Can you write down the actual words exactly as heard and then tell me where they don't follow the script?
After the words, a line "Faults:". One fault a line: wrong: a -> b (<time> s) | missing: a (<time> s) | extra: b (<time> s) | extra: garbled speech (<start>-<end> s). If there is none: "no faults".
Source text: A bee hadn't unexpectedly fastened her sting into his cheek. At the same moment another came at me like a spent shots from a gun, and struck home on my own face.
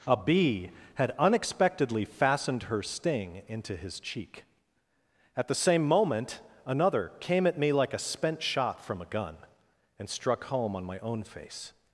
A bee had unexpectedly fastened her sting into his cheek. At the same moment another came at me like a spent shot from a gun, and struck home on my own face.
Faults:
wrong: hadn't -> had (0.9 s)
wrong: shots -> shot (8.4 s)